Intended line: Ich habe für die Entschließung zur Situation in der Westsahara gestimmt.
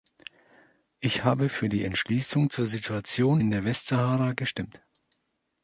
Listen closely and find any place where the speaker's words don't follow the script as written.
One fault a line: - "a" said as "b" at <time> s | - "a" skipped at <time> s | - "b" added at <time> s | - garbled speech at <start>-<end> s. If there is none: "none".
none